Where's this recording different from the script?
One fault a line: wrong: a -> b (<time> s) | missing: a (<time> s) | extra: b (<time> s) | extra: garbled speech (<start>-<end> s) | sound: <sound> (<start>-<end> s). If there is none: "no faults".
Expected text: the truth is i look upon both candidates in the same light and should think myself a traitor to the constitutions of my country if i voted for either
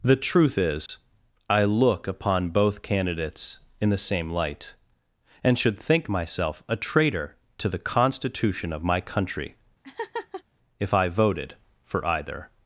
sound: dropout (0.9-0.9 s)
wrong: constitutions -> constitution (7.8 s)
sound: laugh (9.8-10.4 s)